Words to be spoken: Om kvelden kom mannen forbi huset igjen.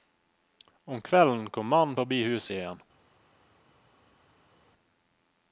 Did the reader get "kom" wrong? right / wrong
right